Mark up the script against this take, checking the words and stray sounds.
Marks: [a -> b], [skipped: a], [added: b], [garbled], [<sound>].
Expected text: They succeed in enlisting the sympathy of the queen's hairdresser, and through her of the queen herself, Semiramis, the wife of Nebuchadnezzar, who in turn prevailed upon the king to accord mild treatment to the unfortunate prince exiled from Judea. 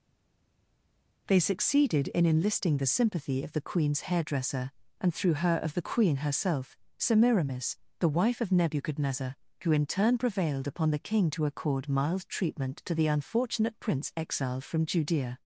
They [succeed -> succeeded] in enlisting the sympathy of the queen's hairdresser, and through her of the queen herself, Semiramis, the wife of Nebuchadnezzar, who in turn prevailed upon the king to accord mild treatment to the unfortunate prince exiled from Judea.